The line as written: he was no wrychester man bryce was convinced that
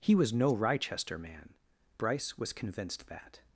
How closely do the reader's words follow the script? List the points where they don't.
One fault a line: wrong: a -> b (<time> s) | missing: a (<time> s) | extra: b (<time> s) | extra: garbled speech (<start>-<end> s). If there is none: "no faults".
no faults